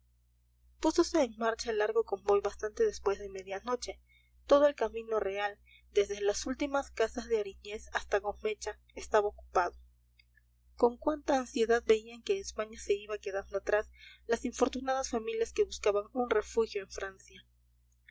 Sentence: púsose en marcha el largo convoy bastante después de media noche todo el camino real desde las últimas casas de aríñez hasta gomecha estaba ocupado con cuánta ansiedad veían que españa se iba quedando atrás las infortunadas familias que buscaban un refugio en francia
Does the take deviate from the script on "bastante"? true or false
false